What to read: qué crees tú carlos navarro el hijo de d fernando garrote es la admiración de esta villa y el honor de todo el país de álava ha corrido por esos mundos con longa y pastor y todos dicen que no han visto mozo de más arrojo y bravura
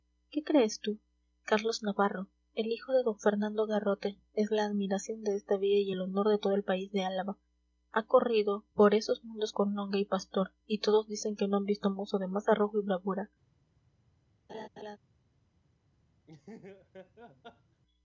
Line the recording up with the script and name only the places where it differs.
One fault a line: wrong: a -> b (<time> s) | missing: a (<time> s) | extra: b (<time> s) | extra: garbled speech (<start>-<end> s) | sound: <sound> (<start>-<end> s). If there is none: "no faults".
sound: laugh (14.5-15.0 s)
sound: laugh (16.3-17.8 s)